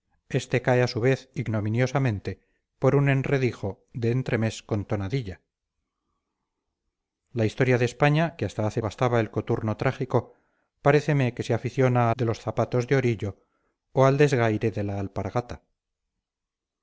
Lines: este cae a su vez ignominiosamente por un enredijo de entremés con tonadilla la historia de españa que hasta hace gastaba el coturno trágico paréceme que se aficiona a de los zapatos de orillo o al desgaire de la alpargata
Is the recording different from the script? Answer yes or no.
no